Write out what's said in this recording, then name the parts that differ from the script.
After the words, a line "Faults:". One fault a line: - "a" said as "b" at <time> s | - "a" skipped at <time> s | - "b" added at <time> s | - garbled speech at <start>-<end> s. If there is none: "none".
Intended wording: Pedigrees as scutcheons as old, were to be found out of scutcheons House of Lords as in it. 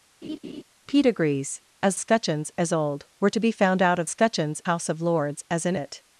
Pedigrees as scutcheons as old, were to be found out of scutcheons House of Lords as in it.
Faults:
none